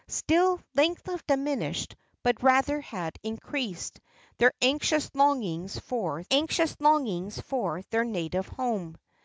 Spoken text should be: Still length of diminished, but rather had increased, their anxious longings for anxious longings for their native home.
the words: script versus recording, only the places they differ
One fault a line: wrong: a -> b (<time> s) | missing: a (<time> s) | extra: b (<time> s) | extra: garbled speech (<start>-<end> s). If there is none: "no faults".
no faults